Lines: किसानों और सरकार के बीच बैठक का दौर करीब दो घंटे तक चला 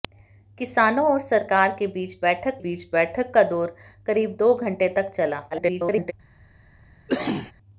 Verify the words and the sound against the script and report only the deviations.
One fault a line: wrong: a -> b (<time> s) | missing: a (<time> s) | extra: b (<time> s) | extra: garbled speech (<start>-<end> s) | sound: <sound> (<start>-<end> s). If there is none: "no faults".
extra: बीच बैठक (2.6 s)
extra: garbled speech (5.5-6.1 s)
sound: cough (7.1-7.5 s)